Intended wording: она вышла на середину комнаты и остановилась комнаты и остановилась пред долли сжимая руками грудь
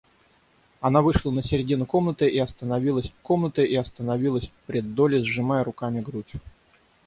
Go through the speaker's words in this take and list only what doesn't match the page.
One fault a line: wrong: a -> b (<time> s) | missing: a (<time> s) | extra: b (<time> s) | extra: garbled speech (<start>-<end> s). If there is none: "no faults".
no faults